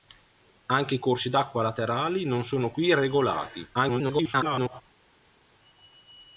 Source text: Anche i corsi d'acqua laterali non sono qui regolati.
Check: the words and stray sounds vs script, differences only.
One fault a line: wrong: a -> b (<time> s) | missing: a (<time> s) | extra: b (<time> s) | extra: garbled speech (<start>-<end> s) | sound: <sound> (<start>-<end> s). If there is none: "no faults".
extra: garbled speech (3.7-4.8 s)